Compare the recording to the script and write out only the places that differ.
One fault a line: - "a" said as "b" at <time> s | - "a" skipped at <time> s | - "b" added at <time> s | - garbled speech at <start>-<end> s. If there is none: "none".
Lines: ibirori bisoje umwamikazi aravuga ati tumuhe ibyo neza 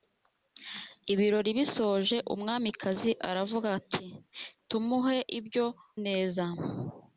none